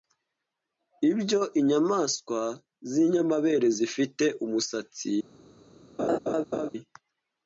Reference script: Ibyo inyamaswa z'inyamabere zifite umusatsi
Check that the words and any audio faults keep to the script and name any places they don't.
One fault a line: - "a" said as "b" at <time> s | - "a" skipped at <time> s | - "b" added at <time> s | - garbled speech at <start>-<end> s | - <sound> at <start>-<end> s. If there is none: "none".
- laugh at 6.0-6.7 s